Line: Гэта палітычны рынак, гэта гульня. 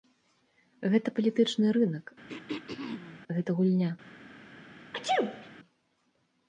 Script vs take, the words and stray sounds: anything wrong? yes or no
yes